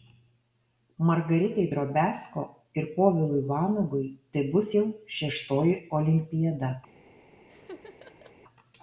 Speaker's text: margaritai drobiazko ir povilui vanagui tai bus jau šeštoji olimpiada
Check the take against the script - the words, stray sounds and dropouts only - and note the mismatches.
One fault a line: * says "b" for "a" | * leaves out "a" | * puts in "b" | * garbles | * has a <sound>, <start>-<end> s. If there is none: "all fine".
* has a laugh, 7.5-8.4 s